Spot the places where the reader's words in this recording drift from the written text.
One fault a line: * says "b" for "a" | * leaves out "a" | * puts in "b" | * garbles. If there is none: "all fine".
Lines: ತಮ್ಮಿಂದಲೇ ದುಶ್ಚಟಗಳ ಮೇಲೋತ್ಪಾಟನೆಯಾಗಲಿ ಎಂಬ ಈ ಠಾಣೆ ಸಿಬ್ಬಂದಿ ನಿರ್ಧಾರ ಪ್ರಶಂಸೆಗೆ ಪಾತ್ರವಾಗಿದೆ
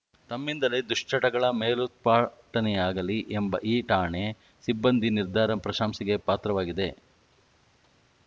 all fine